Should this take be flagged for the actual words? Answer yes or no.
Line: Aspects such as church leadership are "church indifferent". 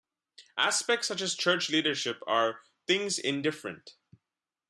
yes